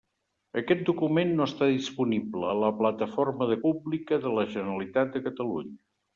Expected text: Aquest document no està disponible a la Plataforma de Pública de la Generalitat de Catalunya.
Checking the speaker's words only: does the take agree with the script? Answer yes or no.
yes